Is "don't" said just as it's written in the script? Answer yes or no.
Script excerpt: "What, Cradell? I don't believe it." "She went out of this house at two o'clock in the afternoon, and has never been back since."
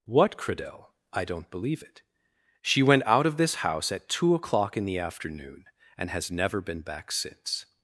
yes